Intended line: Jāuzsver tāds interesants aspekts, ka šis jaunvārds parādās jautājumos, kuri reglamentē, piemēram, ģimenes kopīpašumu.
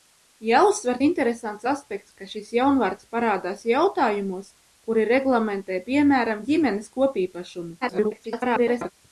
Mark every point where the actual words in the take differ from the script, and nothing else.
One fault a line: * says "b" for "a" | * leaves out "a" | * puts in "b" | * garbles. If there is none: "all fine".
* leaves out "tāds"
* garbles